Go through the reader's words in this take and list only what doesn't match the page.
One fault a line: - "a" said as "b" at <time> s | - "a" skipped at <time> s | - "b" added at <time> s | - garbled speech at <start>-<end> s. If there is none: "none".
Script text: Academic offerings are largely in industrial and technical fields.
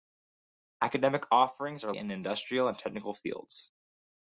- "largely" skipped at 1.9 s